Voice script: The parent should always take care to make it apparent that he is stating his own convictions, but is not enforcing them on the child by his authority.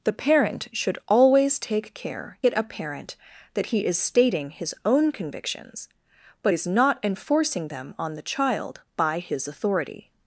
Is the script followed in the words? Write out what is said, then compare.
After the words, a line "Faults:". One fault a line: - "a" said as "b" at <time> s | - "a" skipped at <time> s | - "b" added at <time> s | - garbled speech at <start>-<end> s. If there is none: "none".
The parent should always take care it apparent that he is stating his own convictions, but is not enforcing them on the child by his authority.
Faults:
- "to make" skipped at 2.4 s